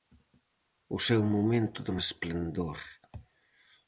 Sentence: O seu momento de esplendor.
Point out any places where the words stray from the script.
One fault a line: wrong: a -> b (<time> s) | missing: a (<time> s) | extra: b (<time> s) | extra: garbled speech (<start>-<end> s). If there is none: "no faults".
no faults